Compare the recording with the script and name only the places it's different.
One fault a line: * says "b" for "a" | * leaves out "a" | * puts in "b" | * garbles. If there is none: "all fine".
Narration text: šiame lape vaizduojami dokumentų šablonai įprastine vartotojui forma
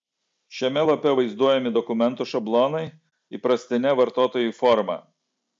all fine